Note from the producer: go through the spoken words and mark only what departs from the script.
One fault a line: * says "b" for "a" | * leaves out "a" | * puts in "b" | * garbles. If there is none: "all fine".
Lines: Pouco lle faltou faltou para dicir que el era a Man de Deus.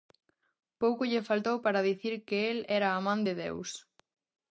* leaves out "faltou"